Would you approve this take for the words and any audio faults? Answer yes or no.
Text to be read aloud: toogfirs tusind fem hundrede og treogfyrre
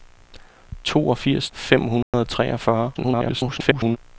no